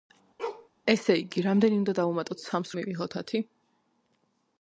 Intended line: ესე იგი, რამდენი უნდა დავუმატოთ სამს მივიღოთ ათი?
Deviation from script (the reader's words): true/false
false